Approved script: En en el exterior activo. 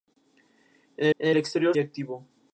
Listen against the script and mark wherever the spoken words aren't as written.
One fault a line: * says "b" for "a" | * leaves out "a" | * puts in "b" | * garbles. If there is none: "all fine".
all fine